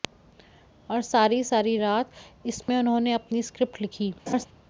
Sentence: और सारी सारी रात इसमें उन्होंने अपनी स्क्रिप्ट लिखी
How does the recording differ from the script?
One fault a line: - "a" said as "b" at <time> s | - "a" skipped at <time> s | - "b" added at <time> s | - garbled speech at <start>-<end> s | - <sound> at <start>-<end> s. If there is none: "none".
- dropout at 2.6-2.7 s
- laugh at 4.3-4.5 s